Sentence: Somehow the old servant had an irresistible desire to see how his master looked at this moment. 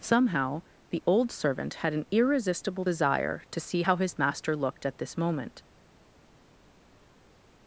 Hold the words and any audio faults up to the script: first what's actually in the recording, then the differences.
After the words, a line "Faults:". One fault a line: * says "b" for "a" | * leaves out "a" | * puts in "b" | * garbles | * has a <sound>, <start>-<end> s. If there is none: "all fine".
Somehow the old servant had an irresistible desire to see how his master looked at this moment.
Faults:
all fine